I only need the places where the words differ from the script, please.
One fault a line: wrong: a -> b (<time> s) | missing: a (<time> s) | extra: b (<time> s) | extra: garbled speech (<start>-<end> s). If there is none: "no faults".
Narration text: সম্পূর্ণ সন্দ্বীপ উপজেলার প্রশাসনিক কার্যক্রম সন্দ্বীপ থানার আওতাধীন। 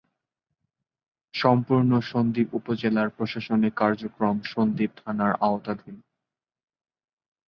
no faults